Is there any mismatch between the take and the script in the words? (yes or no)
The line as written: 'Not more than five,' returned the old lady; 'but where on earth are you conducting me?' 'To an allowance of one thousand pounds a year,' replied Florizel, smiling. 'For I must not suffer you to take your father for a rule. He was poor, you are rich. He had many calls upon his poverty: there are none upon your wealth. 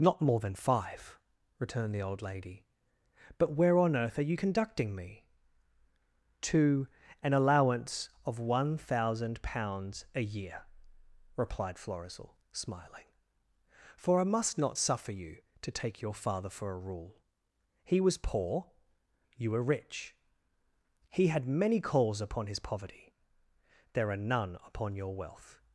yes